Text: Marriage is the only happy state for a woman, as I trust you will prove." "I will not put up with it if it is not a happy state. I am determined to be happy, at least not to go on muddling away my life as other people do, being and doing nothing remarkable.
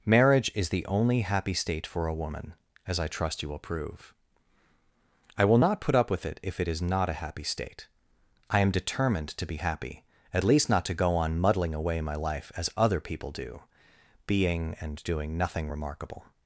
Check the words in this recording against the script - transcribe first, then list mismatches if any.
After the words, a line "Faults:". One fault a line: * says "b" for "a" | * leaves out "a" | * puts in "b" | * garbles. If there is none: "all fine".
Marriage is the only happy state for a woman, as I trust you will prove." "I will not put up with it if it is not a happy state. I am determined to be happy, at least not to go on muddling away my life as other people do, being and doing nothing remarkable.
Faults:
all fine